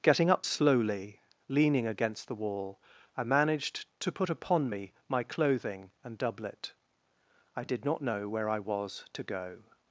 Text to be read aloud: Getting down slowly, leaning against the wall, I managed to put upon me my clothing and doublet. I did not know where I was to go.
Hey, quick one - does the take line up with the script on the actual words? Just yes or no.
no